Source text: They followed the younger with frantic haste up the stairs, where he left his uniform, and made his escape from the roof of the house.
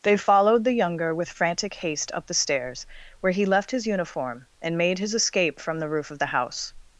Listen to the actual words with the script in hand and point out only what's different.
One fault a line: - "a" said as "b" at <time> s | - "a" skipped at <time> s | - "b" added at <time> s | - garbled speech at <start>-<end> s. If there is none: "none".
none